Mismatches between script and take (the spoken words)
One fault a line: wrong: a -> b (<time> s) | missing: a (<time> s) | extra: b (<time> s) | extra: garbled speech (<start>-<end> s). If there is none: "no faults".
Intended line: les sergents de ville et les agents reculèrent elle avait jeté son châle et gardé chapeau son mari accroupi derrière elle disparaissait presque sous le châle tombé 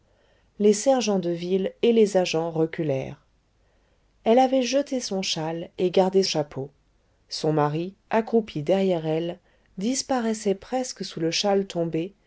no faults